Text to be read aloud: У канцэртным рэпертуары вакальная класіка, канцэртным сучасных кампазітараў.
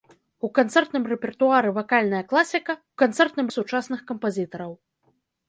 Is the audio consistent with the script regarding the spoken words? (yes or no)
yes